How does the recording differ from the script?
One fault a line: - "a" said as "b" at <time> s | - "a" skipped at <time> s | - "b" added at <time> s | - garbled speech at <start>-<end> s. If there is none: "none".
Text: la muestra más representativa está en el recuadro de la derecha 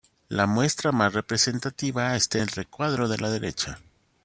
- "en" skipped at 2.4 s